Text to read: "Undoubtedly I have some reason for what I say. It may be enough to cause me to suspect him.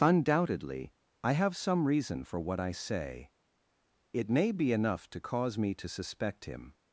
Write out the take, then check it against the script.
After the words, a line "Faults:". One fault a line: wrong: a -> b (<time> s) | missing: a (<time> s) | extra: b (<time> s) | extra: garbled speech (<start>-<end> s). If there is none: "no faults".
"Undoubtedly I have some reason for what I say. It may be enough to cause me to suspect him.
Faults:
no faults